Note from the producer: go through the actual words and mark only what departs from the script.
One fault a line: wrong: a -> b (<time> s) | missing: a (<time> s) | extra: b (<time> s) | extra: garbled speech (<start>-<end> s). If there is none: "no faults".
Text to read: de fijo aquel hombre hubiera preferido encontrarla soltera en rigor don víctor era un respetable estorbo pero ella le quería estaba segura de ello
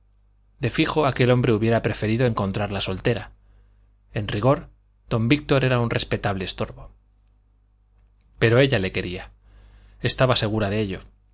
no faults